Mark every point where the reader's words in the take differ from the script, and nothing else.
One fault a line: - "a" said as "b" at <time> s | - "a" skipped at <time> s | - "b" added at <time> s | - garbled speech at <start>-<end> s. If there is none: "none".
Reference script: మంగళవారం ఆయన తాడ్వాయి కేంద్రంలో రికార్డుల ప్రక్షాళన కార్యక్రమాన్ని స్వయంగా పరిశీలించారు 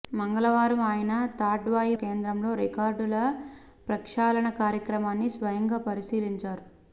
none